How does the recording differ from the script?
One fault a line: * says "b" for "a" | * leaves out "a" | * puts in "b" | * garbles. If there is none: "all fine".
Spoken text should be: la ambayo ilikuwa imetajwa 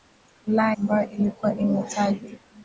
all fine